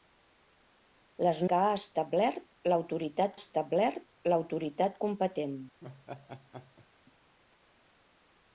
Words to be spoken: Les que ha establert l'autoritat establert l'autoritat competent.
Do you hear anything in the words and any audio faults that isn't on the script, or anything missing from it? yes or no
yes